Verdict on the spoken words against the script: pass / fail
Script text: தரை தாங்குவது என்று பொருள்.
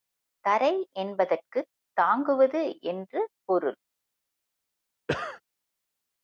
fail